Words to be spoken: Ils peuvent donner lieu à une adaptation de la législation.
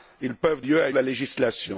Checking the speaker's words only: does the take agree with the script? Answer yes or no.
no